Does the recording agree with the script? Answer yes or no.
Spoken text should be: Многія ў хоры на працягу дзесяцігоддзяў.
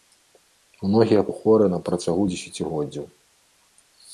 yes